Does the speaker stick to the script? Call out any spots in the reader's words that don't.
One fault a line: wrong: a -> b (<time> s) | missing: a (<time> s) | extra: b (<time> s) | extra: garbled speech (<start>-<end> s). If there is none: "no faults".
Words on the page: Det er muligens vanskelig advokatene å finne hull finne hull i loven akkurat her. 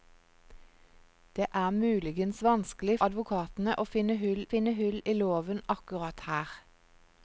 no faults